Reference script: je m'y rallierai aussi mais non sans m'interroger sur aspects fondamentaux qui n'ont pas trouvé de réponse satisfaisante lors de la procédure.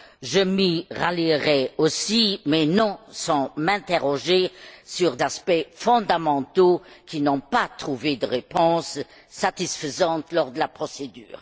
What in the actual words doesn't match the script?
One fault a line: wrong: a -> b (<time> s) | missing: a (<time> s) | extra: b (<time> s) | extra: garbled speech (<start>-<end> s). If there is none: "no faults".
no faults